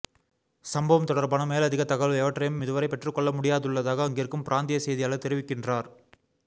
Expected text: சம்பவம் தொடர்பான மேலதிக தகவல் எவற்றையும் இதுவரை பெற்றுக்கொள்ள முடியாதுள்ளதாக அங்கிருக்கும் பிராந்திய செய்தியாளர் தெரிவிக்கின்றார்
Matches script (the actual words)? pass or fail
pass